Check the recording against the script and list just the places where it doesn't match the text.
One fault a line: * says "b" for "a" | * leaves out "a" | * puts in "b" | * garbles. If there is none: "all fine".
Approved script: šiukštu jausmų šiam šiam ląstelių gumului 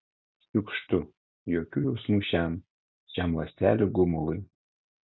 * puts in "jokių"